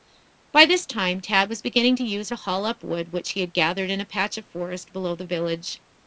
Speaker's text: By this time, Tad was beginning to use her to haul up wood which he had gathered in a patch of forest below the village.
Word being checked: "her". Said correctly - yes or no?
no